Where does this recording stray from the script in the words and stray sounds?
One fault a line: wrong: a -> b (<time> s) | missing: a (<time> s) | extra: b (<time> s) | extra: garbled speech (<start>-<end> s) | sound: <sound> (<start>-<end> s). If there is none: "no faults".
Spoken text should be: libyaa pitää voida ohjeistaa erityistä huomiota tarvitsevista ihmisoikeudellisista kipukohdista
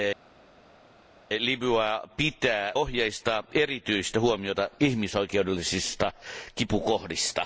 missing: voida (2.7 s)
missing: tarvitsevista (4.7 s)